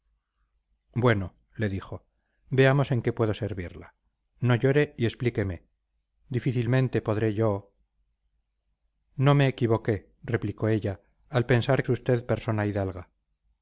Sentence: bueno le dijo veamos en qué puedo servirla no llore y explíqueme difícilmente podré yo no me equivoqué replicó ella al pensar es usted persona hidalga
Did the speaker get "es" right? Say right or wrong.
right